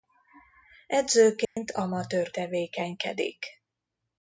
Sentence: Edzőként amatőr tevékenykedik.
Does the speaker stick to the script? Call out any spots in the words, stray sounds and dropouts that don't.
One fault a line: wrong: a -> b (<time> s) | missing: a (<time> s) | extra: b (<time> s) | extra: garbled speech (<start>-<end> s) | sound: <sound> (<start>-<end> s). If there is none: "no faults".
sound: dropout (1.4-1.6 s)